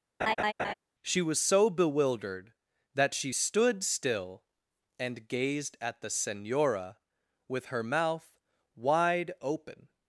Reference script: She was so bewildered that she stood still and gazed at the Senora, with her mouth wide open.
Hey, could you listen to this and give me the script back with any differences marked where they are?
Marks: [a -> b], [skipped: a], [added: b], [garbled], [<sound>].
[laugh] She was so bewildered that she stood still and gazed at the Senora, with her mouth wide open.